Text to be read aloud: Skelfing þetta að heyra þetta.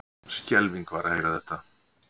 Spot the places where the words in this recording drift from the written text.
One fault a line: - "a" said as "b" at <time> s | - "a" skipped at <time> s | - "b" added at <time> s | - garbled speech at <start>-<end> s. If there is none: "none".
- "þetta" said as "var" at 0.9 s